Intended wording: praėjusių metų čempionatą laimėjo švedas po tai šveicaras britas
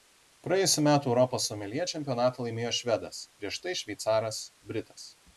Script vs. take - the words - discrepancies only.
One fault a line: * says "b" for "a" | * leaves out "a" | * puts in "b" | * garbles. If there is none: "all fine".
* puts in "europos someljė"
* says "prieš" for "po"